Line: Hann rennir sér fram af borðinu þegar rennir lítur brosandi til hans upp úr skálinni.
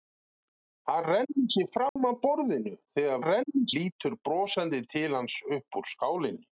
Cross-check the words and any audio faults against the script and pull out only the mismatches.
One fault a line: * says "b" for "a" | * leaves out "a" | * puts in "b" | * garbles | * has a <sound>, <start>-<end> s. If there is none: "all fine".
* has a dropout, 1.9-2.0 s